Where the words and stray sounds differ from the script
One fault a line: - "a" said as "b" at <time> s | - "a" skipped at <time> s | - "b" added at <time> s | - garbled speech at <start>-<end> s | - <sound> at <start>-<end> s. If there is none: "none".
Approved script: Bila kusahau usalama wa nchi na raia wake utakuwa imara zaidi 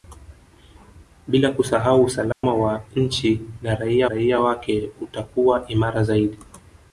- dropout at 2.3-2.4 s
- "raia" added at 4.0 s